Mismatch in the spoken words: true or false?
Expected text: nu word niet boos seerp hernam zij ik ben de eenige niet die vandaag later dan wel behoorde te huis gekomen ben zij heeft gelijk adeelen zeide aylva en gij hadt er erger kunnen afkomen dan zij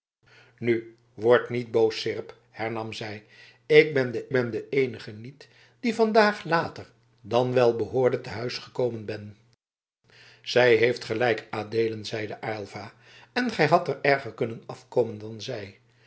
true